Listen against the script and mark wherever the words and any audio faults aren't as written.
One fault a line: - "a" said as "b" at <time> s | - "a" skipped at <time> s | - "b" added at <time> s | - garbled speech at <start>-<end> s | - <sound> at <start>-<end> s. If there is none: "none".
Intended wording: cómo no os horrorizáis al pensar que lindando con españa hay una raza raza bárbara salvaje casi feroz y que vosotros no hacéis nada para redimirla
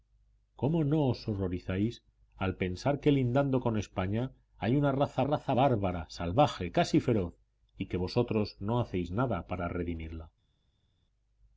none